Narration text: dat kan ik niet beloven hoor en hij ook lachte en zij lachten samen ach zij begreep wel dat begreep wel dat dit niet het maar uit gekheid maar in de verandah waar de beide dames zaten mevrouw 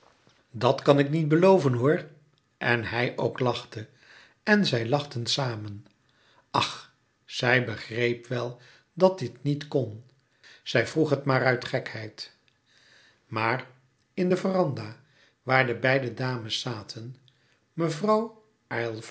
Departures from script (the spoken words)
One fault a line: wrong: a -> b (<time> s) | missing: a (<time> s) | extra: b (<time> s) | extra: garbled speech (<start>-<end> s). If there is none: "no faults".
wrong: begreep wel dat dit niet -> dit niet kon zij vroeg (9.2 s)